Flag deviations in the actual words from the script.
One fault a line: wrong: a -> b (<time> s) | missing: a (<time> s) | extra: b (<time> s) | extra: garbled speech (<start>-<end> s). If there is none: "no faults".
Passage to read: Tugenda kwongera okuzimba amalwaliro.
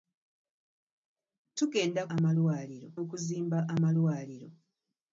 wrong: kwongera -> amalwaliro (2.1 s)